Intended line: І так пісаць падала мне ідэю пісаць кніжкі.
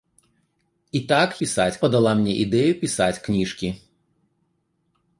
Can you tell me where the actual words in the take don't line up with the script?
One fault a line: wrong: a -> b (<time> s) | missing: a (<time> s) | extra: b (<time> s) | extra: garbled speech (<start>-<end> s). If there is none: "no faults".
no faults